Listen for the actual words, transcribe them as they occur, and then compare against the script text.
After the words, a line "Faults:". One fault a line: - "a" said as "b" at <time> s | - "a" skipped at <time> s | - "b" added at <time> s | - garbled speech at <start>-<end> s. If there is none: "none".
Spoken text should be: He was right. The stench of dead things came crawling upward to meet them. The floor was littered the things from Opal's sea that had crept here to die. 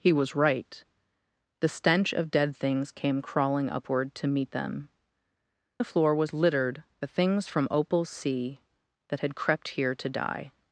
He was right. The stench of dead things came crawling upward to meet them. The floor was littered the things from Opal's sea that had crept here to die.
Faults:
none